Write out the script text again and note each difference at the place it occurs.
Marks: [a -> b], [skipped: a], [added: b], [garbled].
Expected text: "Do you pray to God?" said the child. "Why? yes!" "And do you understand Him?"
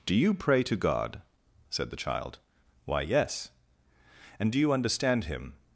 "Do you pray to God?" said the child. "Why? yes!" "And do you understand Him?"